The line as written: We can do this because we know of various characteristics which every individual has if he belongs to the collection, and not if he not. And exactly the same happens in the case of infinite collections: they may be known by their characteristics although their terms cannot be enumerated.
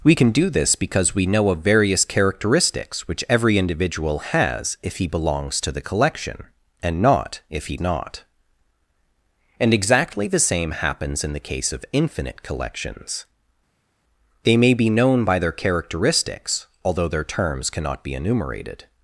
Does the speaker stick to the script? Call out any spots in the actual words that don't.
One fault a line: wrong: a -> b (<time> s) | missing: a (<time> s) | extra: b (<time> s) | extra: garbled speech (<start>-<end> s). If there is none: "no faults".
no faults